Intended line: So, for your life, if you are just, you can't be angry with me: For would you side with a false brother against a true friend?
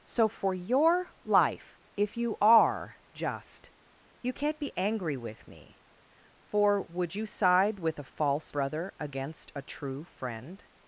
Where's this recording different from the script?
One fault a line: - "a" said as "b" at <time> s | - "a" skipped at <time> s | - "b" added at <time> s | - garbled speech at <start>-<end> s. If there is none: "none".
none